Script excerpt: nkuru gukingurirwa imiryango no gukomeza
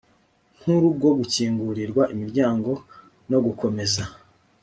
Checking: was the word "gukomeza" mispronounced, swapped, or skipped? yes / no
no